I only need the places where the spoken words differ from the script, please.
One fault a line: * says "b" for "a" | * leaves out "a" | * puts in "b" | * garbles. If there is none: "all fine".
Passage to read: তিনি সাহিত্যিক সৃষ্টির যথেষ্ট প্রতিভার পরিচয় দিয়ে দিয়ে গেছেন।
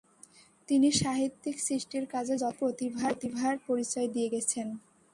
* puts in "কাজে"
* leaves out "দিয়ে"